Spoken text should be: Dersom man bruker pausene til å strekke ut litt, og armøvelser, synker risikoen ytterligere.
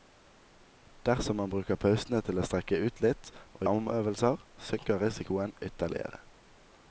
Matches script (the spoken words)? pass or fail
pass